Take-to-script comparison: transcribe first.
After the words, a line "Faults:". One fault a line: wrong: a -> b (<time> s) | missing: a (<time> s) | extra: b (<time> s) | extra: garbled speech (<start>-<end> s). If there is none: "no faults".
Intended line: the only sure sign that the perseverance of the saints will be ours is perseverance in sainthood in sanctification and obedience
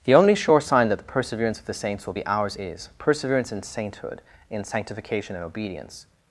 the only sure sign that the perseverance of the saints will be ours is perseverance in sainthood in sanctification and obedience
Faults:
no faults